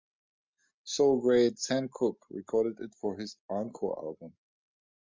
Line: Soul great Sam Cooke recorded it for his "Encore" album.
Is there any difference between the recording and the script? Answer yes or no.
no